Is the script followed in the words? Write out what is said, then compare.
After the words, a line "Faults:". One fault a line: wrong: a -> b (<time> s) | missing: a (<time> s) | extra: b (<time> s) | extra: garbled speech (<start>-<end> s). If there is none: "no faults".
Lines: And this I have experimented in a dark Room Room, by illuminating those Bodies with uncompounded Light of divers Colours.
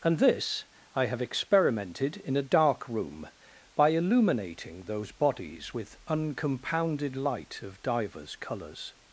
And this I have experimented in a dark Room, by illuminating those Bodies with uncompounded Light of divers Colours.
Faults:
missing: Room (3.3 s)